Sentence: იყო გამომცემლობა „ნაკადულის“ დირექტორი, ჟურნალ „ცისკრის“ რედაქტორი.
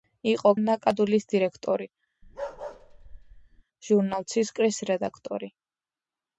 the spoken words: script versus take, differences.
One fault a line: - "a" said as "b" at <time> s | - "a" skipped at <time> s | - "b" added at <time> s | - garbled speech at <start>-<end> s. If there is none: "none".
- "გამომცემლობა" skipped at 0.5 s